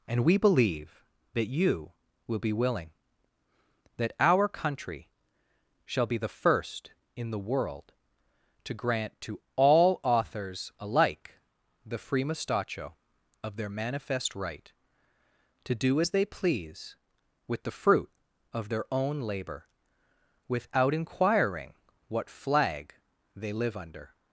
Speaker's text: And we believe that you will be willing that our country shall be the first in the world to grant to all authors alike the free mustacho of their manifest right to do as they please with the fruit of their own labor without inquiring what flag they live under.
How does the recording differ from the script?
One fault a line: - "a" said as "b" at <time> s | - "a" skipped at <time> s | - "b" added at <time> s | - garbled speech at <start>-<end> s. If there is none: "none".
none